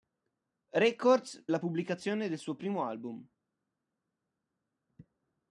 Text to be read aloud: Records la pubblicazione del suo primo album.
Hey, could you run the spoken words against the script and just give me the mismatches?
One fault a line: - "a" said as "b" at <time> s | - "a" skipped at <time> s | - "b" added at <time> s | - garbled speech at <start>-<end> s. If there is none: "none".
none